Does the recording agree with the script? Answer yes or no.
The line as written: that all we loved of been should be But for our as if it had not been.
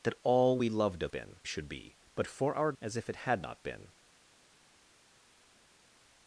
yes